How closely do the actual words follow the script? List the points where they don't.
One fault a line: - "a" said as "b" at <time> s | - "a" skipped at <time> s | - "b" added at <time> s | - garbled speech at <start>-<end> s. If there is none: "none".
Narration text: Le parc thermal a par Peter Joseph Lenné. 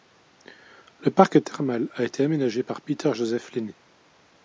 - "été aménagé" added at 2.0 s